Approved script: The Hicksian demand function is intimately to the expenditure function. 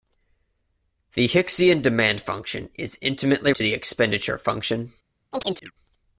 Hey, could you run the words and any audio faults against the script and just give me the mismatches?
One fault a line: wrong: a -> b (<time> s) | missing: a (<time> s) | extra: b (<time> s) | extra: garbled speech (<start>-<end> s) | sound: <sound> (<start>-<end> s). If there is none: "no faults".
sound: chirp (5.3-5.7 s)